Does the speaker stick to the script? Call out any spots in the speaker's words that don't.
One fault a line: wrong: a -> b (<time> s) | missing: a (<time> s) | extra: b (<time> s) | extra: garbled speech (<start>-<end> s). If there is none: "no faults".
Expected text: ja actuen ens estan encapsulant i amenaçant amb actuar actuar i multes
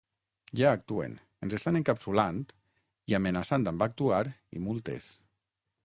missing: actuar (4.2 s)